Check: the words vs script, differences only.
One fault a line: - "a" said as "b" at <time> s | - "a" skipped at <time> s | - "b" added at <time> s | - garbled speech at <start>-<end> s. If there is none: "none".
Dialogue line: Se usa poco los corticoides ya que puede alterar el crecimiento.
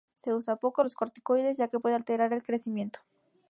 none